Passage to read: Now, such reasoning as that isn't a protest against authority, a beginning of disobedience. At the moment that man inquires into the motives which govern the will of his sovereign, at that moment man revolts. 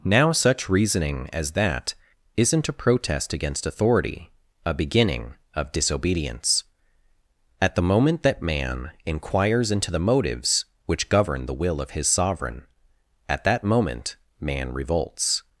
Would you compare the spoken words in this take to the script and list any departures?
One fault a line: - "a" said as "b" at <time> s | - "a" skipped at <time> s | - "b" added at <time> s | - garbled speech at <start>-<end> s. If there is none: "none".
none